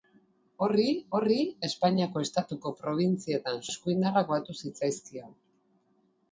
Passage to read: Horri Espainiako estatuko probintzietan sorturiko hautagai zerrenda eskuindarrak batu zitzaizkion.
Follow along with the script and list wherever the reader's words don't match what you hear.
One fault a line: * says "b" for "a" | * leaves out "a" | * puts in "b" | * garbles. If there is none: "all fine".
* puts in "horri"
* leaves out "sorturiko hautagai zerrenda"